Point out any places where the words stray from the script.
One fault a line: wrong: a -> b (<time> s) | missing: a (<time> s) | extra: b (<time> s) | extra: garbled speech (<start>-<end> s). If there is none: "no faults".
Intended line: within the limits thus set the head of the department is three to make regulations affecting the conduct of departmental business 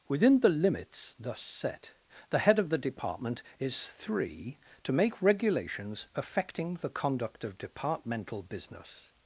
no faults